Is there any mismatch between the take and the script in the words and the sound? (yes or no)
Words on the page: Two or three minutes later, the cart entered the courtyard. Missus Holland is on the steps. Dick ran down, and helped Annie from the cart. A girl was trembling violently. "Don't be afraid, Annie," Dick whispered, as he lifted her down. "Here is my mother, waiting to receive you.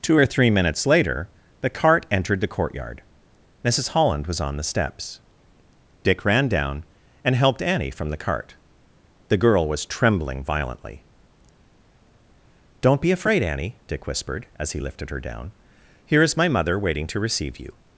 yes